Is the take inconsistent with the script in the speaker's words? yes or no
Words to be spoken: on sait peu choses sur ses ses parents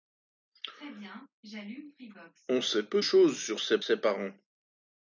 no